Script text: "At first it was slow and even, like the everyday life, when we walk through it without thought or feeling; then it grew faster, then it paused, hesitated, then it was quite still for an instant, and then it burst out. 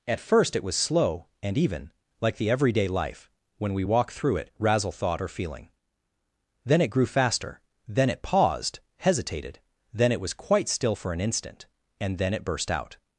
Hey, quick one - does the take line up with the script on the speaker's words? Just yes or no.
no